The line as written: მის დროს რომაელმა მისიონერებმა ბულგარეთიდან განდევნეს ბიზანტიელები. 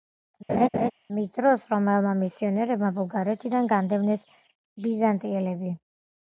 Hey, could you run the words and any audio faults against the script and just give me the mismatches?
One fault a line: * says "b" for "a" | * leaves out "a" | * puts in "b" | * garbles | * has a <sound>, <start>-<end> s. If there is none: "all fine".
* has a laugh, 0.5-0.9 s